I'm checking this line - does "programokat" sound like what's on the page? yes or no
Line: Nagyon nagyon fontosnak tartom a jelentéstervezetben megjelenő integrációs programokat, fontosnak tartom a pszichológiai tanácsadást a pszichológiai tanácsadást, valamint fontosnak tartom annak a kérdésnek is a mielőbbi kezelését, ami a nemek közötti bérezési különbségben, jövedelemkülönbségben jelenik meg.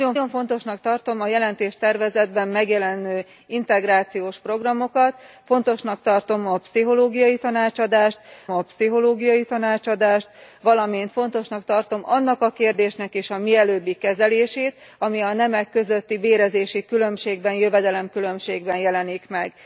yes